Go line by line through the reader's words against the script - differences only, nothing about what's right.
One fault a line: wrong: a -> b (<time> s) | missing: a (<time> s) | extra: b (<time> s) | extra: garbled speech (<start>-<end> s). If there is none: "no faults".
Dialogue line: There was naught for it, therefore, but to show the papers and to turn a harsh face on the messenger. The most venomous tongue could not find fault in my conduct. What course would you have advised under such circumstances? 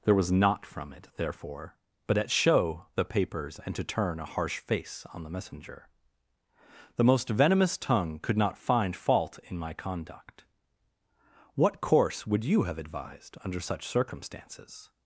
wrong: for -> from (0.7 s)
wrong: to -> at (2.2 s)